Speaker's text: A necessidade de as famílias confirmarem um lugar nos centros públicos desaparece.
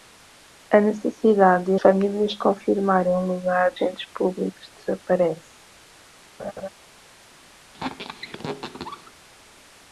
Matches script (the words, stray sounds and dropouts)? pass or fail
fail